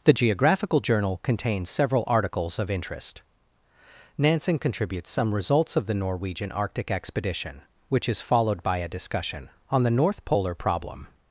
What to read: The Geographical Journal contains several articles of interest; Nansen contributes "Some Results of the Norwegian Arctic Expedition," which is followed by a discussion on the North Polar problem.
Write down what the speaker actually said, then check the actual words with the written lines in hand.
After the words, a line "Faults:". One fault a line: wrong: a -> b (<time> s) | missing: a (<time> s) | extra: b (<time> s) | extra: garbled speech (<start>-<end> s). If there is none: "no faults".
The Geographical Journal contains several articles of interest; Nansen contributes "Some Results of the Norwegian Arctic Expedition," which is followed by a discussion on the North Polar problem.
Faults:
no faults